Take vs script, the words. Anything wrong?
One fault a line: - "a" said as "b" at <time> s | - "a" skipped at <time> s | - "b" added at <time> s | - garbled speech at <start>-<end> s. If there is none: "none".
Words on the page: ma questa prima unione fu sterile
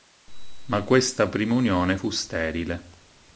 none